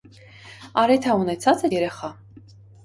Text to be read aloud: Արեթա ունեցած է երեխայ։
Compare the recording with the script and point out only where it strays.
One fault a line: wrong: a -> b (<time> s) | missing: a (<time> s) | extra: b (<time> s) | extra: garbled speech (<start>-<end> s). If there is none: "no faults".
no faults